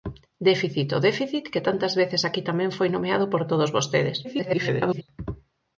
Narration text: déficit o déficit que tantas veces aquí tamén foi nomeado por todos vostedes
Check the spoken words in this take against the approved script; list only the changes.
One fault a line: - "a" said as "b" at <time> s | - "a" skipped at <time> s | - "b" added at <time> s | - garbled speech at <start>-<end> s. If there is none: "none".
- garbled speech at 4.2-5.0 s